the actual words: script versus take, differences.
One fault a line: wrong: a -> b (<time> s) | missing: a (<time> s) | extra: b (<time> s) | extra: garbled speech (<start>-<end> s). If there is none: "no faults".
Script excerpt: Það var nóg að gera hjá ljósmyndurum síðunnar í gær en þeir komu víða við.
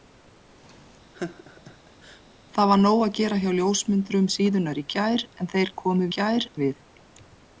wrong: víða -> gær (6.2 s)